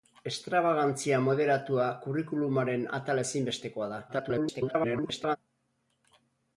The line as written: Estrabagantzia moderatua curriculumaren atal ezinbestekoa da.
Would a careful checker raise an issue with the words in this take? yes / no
yes